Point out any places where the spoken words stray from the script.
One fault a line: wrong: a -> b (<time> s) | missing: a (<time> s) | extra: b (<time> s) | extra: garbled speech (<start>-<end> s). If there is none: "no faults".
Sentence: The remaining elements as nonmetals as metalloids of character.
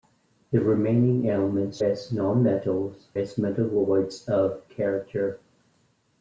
no faults